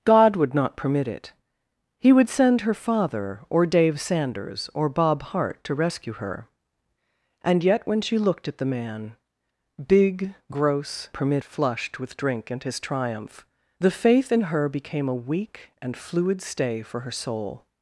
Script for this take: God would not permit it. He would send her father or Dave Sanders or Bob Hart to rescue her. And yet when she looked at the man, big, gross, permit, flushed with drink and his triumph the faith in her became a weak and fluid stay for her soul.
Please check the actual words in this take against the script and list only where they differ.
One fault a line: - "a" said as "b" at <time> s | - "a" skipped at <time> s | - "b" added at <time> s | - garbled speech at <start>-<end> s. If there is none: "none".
none